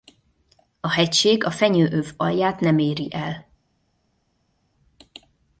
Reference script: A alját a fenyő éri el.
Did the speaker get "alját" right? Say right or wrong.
wrong